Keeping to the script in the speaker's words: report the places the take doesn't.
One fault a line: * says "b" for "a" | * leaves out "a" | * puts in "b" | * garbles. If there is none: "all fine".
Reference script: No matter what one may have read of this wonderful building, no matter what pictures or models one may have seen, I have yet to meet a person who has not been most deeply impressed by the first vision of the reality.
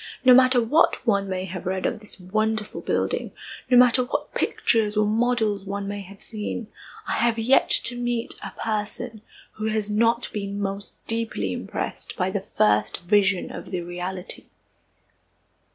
all fine